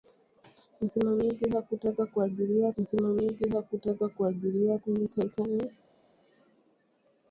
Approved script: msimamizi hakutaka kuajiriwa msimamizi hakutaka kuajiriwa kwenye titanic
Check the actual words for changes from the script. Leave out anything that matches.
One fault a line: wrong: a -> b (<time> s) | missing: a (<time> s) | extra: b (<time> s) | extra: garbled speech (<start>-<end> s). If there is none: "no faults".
no faults